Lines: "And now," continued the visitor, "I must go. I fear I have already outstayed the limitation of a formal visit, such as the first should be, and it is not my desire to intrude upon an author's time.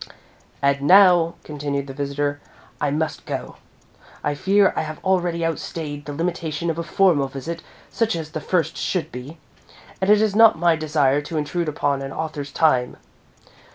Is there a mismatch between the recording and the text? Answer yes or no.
no